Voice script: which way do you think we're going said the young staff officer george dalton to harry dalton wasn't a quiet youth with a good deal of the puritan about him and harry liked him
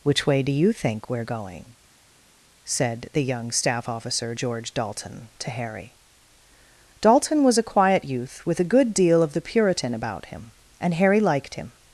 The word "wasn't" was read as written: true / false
false